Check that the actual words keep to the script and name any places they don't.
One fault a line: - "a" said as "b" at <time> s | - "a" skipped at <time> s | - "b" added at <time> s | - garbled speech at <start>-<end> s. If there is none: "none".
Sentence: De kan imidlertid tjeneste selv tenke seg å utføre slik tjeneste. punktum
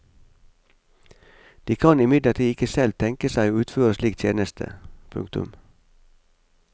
- "tjeneste" said as "ikke" at 2.5 s